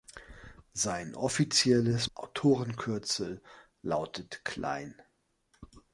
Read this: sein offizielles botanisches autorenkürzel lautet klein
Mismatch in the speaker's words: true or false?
true